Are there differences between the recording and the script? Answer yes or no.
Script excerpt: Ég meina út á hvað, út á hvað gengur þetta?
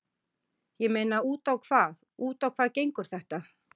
no